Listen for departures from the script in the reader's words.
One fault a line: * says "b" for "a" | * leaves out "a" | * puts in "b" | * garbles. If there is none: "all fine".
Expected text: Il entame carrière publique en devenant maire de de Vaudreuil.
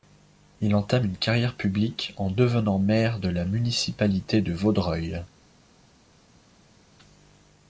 * puts in "une"
* puts in "la municipalité"